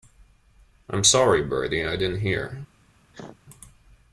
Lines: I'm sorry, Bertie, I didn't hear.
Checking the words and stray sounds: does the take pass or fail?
fail